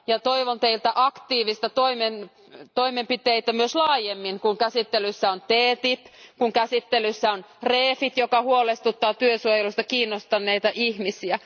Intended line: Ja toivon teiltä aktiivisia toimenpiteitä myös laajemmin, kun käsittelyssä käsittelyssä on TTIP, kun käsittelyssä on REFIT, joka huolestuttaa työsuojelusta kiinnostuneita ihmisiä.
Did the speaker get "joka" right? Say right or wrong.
right